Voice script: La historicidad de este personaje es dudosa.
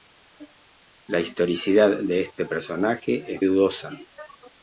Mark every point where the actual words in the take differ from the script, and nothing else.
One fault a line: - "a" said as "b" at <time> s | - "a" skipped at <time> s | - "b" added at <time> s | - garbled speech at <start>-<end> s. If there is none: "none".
none